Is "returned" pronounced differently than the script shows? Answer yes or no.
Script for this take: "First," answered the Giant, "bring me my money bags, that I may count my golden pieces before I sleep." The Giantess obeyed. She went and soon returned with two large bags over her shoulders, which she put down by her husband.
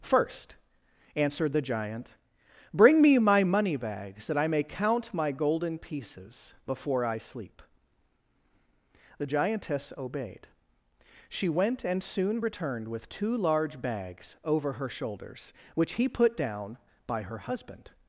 no